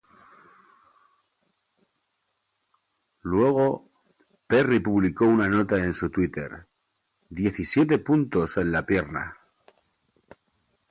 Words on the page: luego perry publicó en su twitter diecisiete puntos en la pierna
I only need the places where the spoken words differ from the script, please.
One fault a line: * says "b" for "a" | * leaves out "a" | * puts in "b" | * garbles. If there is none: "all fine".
* puts in "una nota"